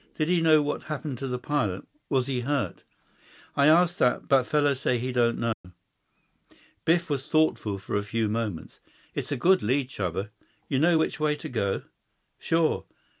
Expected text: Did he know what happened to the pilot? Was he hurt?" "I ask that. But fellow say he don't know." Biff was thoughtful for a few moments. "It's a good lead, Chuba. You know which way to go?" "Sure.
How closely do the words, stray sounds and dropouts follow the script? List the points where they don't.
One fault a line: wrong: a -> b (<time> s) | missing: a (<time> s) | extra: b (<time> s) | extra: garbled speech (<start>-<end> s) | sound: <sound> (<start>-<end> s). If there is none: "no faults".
sound: dropout (5.5-5.6 s)